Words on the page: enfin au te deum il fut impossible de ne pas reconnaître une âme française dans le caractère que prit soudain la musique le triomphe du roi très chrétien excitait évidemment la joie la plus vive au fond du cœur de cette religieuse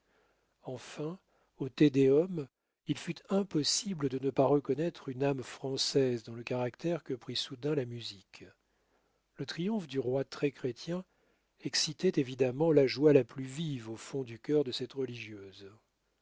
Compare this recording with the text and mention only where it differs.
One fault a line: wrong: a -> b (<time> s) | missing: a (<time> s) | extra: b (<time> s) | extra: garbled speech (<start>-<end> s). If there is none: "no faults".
no faults